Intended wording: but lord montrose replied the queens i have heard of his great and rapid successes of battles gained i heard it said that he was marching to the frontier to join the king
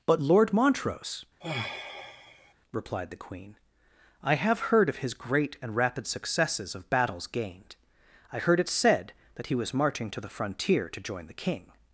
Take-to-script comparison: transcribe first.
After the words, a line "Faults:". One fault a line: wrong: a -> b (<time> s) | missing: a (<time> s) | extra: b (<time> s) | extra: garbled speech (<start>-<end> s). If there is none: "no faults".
but lord montrose replied the queen i have heard of his great and rapid successes of battles gained i heard it said that he was marching to the frontier to join the king
Faults:
wrong: queens -> queen (3.2 s)